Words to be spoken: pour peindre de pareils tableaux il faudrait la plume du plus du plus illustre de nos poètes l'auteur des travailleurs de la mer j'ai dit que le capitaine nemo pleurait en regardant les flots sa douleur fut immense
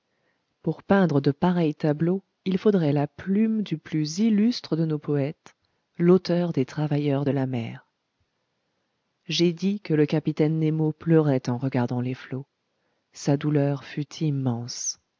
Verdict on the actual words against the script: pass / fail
fail